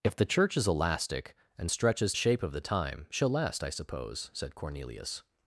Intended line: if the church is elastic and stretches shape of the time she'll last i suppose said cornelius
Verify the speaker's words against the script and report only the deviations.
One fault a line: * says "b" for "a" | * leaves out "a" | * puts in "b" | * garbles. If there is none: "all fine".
all fine